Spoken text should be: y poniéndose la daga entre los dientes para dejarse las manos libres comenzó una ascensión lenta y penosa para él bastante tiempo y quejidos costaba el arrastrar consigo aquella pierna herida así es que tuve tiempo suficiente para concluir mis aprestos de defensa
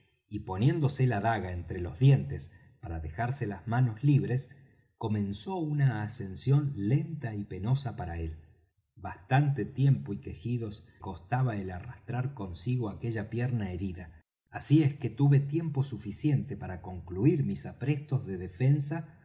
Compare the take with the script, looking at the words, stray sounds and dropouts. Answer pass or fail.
pass